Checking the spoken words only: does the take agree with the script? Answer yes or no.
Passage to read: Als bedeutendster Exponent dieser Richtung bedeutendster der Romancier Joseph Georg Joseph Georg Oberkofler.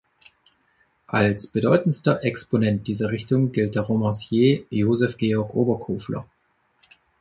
no